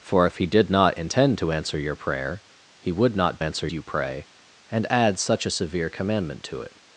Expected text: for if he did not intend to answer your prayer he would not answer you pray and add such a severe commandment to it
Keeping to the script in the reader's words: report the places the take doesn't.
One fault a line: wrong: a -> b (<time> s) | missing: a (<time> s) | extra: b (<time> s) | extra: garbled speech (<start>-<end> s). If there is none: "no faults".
no faults